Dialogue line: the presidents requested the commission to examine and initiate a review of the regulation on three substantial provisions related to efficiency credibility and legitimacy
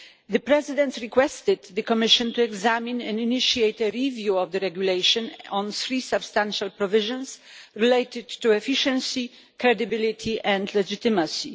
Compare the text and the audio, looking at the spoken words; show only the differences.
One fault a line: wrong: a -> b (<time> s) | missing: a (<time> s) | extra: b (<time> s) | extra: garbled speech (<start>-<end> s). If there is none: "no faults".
no faults